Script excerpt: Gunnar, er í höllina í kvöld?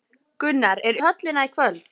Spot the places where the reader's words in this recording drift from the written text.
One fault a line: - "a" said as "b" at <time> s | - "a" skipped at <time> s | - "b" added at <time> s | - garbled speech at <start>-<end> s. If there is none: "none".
none